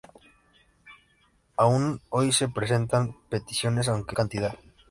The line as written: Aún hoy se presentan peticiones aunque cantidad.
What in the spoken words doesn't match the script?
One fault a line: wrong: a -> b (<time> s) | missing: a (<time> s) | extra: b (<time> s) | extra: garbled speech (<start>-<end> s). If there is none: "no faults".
no faults